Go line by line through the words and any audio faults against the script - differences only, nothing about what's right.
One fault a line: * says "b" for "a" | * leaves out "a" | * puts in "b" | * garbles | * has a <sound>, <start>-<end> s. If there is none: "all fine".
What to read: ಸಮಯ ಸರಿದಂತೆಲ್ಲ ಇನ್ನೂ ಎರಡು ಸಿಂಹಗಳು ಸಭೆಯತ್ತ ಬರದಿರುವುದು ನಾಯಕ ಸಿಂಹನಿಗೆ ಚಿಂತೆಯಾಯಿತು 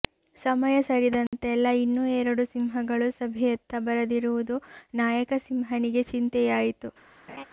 * has a dropout, 1.3-1.3 s
* has a laugh, 7.3-7.4 s